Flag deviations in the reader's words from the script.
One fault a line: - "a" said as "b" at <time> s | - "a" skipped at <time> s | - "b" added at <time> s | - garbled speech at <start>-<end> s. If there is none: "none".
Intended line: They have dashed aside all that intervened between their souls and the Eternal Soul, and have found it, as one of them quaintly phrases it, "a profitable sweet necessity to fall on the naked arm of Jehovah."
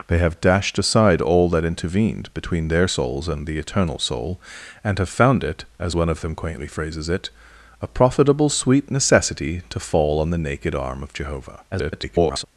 - garbled speech at 11.7-12.4 s